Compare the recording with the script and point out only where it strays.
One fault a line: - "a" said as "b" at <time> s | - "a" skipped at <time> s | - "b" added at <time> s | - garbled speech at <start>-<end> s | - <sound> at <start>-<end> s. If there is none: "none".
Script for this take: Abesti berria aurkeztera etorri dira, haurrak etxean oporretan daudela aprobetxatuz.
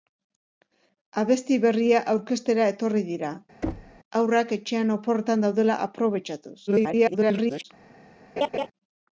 - thud at 3.6-4.0 s
- garbled speech at 6.7-7.6 s
- laugh at 8.4-8.7 s